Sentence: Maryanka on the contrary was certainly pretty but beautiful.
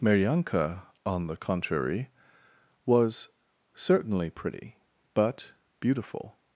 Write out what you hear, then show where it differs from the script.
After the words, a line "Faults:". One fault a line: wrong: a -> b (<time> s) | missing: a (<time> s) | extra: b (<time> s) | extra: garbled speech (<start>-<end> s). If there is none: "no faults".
Maryanka on the contrary was certainly pretty but beautiful.
Faults:
no faults